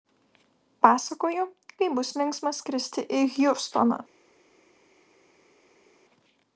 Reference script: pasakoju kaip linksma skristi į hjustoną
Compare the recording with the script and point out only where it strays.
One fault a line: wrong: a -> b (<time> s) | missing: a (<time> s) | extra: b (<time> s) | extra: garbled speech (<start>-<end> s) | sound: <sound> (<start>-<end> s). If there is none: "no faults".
extra: bus (2.0 s)